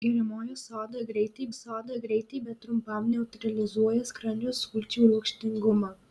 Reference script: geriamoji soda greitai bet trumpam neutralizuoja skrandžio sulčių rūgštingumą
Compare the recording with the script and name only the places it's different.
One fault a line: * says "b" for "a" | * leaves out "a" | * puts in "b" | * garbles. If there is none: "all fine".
* puts in "soda greitai"